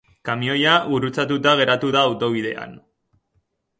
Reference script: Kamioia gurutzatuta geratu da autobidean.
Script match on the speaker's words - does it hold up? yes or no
yes